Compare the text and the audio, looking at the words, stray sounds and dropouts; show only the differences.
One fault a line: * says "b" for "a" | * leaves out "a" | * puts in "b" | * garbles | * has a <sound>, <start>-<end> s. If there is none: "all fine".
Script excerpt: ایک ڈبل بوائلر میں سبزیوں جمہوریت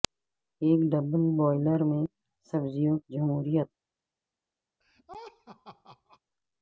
* has a laugh, 4.8-6.2 s